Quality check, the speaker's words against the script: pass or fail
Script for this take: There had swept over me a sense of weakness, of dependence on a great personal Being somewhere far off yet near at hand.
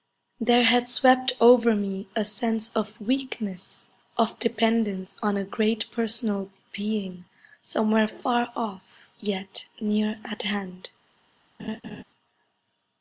pass